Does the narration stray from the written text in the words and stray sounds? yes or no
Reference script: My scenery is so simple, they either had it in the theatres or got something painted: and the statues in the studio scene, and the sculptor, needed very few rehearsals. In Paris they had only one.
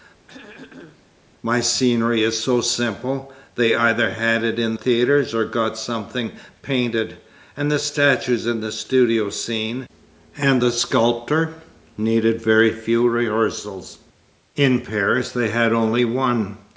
yes